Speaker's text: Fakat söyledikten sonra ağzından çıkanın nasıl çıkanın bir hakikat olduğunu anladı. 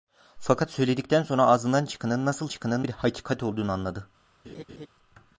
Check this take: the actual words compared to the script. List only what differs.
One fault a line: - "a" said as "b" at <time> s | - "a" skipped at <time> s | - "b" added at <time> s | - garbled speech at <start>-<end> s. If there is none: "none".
none